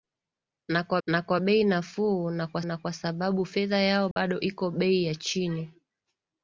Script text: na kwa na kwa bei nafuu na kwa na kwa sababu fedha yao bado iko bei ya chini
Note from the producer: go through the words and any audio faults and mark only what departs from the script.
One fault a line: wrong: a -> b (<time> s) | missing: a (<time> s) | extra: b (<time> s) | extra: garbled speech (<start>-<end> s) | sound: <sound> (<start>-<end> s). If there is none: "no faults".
sound: dropout (4.1-4.2 s)